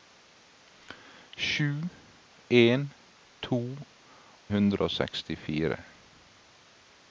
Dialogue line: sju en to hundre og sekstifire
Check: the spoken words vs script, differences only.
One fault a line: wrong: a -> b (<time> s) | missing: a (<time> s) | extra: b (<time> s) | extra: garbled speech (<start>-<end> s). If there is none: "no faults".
no faults